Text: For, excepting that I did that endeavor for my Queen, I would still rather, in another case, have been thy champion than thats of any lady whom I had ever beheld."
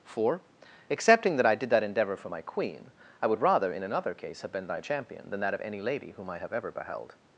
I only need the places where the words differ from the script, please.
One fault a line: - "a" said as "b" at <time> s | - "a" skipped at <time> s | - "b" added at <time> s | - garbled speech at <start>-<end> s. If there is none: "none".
- "still" skipped at 3.4 s
- "thats" said as "that" at 5.4 s
- "had" said as "have" at 6.4 s